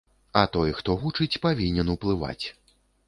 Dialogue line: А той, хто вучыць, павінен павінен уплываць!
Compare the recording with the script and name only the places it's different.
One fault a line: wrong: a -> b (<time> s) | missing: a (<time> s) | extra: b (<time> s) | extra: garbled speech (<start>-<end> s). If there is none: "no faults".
missing: павінен (1.9 s)